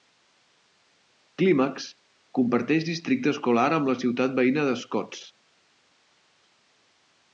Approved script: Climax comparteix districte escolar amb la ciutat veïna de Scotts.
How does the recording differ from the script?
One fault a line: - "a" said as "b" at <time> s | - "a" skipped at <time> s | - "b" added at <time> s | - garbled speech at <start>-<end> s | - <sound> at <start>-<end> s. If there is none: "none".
none